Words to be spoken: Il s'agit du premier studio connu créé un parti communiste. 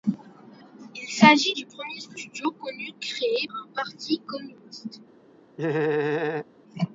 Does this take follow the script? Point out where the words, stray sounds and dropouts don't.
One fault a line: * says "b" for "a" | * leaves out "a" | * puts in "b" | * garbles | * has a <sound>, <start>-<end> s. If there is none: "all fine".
* has a laugh, 5.6-6.5 s